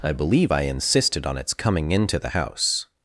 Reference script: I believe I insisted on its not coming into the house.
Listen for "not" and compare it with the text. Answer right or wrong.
wrong